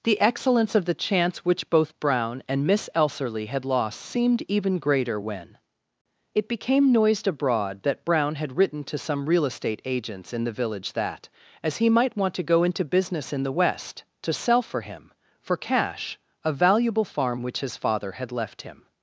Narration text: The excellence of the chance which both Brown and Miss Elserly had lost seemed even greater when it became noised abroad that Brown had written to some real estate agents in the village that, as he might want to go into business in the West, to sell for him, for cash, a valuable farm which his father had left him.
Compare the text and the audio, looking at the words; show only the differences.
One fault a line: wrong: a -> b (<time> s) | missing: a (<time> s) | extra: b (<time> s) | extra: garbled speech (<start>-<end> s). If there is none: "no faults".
no faults